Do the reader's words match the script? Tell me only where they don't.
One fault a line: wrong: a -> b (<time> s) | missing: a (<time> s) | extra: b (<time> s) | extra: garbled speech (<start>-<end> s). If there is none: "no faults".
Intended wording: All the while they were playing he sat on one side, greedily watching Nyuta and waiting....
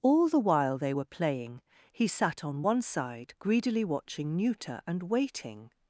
no faults